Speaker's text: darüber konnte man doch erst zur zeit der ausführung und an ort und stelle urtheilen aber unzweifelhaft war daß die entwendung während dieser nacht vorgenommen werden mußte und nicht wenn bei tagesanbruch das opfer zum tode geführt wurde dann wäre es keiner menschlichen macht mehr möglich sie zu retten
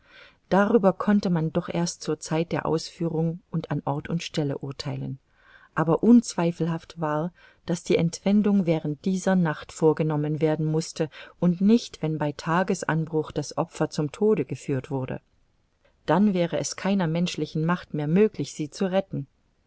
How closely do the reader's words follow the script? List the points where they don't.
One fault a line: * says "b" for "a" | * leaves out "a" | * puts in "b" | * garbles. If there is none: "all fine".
all fine